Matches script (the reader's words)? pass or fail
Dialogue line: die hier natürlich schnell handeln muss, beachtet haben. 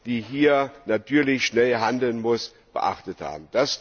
pass